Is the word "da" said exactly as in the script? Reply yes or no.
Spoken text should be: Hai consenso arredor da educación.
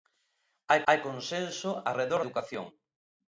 no